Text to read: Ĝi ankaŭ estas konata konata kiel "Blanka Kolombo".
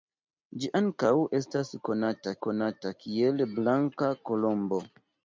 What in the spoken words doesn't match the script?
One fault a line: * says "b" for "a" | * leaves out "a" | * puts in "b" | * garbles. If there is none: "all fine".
all fine